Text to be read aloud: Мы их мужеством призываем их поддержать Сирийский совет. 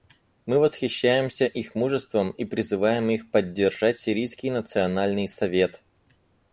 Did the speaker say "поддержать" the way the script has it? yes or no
yes